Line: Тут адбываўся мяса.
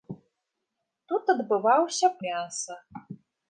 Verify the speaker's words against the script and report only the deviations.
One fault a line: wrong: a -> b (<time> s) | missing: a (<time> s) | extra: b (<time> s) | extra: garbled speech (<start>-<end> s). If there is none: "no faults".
no faults